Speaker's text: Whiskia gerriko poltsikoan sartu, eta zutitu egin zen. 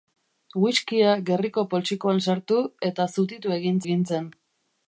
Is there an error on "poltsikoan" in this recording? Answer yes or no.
no